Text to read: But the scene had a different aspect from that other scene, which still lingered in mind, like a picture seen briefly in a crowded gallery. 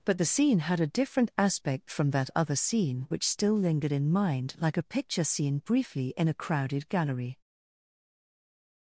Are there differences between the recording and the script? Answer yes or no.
no